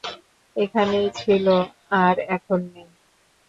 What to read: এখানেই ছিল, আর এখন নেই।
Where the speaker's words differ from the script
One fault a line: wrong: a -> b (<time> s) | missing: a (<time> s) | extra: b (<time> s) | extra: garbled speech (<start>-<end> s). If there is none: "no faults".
no faults